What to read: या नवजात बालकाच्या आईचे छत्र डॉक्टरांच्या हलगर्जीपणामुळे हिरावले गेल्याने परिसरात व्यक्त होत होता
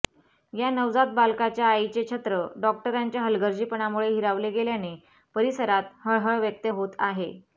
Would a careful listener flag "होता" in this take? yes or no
yes